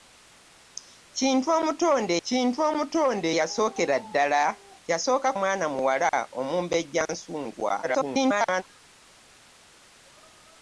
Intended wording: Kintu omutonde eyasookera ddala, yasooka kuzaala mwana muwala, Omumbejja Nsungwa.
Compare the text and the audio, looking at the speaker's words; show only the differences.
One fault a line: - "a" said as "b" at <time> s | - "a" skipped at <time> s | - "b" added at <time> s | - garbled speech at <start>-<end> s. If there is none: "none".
- "kintu omutonde" added at 2.3 s
- "kuzaala" skipped at 5.3 s
- garbled speech at 7.8-8.6 s